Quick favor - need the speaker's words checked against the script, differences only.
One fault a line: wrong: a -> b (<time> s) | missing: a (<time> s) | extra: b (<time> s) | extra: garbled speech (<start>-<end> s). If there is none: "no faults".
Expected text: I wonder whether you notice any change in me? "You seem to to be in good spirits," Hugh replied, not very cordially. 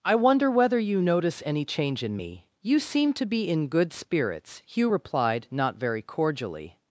missing: to (3.3 s)